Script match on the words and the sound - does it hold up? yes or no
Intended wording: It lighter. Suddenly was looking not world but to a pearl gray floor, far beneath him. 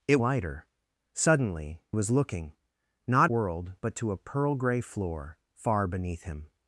yes